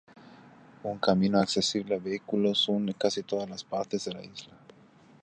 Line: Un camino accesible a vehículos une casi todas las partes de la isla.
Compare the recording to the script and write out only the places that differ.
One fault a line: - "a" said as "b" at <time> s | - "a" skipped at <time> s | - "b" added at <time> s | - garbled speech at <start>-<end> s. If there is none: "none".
none